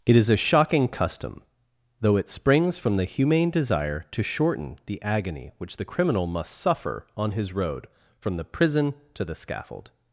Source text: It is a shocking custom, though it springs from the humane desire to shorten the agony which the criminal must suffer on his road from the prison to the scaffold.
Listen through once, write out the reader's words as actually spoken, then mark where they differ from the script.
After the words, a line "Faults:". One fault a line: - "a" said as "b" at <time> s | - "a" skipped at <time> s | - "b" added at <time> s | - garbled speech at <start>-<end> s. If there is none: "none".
It is a shocking custom, though it springs from the humane desire to shorten the agony which the criminal must suffer on his road from the prison to the scaffold.
Faults:
none